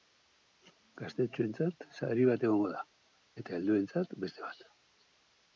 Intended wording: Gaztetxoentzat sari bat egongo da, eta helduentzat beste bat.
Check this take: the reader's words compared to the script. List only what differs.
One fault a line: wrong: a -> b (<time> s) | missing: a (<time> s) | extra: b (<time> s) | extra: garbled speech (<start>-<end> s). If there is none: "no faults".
no faults